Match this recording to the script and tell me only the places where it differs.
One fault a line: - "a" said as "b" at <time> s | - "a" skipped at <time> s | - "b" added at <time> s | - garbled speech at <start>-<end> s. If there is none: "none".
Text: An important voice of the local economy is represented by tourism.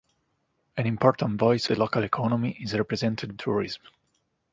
- "of" skipped at 1.7 s
- "by" skipped at 3.4 s